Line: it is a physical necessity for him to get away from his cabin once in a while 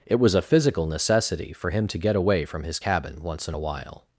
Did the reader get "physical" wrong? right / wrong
right